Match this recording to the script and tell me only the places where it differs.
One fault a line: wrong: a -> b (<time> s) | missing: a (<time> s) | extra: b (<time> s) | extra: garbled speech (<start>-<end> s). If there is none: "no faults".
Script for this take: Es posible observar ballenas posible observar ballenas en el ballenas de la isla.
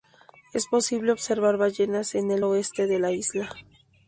missing: posible observar ballenas (2.1 s)
wrong: ballenas -> oeste (2.4 s)